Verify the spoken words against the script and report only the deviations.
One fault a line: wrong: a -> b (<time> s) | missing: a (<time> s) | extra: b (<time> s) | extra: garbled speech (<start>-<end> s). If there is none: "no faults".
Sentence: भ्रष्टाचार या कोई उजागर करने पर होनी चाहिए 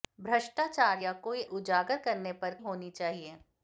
no faults